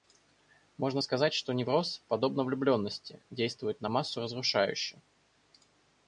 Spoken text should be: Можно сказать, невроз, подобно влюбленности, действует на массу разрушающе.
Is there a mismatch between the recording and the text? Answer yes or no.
yes